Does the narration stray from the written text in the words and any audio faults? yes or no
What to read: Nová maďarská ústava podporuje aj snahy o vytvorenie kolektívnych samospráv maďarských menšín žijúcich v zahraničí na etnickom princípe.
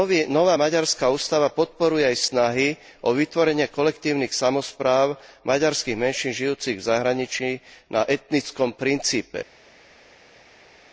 no